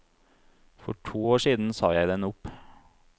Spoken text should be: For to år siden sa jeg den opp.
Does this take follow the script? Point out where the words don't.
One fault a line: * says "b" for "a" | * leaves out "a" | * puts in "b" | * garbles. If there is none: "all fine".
all fine